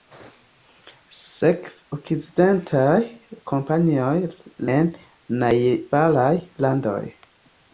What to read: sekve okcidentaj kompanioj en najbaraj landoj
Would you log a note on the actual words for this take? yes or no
no